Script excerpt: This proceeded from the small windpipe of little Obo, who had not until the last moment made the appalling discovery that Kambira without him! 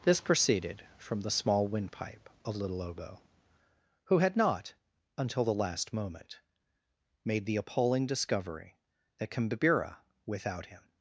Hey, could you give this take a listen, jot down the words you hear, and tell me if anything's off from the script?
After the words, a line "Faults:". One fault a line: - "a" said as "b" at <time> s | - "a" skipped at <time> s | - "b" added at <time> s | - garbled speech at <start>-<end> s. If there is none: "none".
This proceeded from the small windpipe of little Obo, who had not until the last moment made the appalling discovery that Kambira without him!
Faults:
none